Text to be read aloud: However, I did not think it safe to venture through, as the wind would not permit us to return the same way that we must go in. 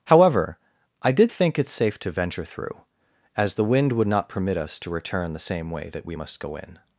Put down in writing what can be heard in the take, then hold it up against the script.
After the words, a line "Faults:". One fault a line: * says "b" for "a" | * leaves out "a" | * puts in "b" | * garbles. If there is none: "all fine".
However, I did think it safe to venture through, as the wind would not permit us to return the same way that we must go in.
Faults:
* leaves out "not"